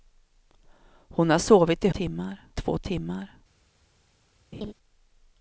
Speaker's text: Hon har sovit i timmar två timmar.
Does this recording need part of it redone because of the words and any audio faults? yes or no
yes